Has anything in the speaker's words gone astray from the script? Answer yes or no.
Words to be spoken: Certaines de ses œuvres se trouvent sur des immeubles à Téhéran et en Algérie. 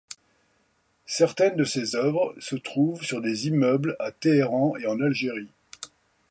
no